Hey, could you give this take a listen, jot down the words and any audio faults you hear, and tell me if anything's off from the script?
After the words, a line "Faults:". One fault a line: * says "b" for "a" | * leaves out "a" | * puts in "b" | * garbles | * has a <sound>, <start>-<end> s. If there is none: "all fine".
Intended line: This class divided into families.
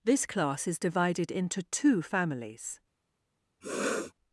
This class is divided into two families.
Faults:
* puts in "is"
* puts in "two"
* has a sniff, 3.6-4.1 s